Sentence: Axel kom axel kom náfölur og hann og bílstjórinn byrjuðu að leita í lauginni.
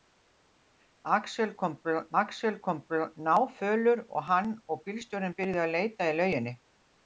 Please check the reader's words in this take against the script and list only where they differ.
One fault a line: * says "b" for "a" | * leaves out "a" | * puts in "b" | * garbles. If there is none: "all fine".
all fine